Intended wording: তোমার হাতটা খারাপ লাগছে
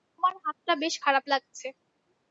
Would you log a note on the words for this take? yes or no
yes